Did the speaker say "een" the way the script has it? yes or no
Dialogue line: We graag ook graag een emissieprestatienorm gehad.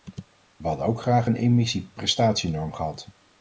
yes